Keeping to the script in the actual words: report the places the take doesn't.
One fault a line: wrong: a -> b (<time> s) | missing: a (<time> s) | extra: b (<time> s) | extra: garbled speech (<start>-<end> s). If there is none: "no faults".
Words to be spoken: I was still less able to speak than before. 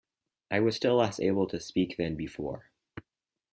no faults